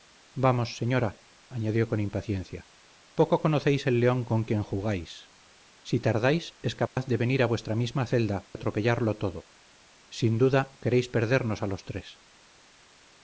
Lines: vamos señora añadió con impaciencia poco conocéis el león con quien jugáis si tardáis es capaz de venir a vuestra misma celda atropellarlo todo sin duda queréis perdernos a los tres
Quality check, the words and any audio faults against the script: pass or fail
fail